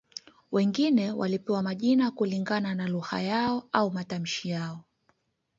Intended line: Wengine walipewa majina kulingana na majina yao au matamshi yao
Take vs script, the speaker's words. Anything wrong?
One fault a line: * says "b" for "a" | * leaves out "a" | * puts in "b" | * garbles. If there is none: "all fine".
* says "lugha" for "majina"